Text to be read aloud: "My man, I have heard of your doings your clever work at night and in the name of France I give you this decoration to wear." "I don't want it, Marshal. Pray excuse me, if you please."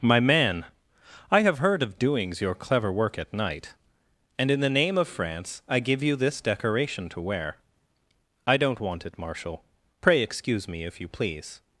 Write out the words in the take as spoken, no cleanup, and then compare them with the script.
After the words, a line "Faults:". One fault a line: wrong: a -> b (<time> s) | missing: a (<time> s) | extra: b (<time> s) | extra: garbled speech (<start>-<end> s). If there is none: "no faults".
"My man, I have heard of doings your clever work at night and in the name of France I give you this decoration to wear." "I don't want it, Marshal. Pray excuse me, if you please."
Faults:
missing: your (2.0 s)